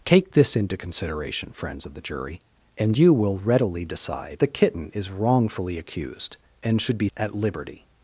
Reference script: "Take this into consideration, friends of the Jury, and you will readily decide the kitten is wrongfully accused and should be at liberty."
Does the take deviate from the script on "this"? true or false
false